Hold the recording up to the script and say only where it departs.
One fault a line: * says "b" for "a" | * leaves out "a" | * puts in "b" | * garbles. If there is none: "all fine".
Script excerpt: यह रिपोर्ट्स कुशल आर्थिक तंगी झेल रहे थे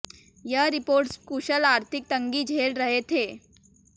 all fine